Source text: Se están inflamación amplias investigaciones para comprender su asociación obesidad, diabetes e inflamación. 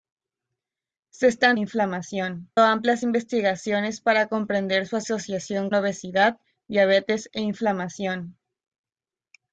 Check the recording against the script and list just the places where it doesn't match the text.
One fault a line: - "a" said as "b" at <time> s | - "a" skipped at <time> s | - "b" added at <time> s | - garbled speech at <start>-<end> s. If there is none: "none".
none